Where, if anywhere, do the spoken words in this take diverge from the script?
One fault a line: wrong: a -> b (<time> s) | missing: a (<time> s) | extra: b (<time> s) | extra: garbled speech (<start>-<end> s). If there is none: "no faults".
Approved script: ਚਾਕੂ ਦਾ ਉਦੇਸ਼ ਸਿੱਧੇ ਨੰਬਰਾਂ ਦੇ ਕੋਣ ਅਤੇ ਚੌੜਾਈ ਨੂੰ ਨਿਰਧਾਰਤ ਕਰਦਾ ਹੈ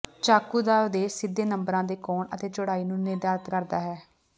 no faults